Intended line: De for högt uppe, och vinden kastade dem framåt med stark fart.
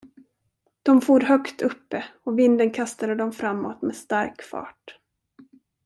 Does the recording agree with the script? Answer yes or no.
yes